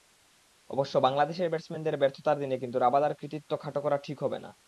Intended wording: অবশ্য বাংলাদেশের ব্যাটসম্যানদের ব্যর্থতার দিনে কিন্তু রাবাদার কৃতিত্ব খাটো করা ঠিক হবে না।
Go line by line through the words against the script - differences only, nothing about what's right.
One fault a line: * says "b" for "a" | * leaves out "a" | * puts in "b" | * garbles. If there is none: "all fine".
all fine